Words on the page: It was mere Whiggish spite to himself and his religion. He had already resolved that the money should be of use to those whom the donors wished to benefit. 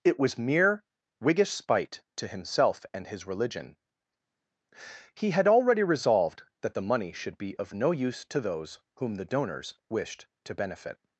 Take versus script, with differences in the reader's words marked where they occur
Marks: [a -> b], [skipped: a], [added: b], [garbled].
It was mere Whiggish spite to himself and his religion. He had already resolved that the money should be of [added: no] use to those whom the donors wished to benefit.